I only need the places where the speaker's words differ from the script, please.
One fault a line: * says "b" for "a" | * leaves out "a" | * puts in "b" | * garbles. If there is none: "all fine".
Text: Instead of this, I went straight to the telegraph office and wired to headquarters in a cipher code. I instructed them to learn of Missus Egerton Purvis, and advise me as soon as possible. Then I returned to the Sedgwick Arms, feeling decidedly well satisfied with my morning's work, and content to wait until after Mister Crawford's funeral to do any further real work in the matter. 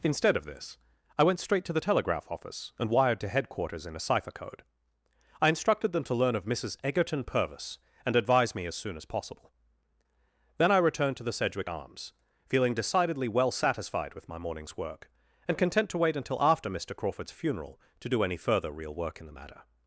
all fine